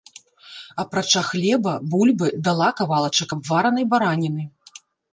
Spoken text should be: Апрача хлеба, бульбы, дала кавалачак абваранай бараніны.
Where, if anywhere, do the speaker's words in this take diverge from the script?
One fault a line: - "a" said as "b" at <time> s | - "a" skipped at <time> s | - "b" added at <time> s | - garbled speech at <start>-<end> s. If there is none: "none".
none